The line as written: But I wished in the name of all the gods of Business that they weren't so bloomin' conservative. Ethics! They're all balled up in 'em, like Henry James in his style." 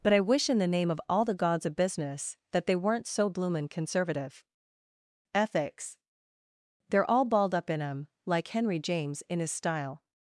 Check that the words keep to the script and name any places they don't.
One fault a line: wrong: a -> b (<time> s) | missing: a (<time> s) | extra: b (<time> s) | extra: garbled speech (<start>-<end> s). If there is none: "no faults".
wrong: wished -> wish (0.2 s)